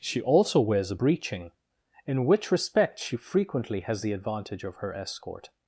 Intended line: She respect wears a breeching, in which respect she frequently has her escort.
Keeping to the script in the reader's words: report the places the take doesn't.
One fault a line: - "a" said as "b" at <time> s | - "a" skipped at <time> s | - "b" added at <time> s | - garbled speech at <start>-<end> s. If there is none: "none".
- "respect" said as "also" at 0.2 s
- "the advantage of" added at 4.0 s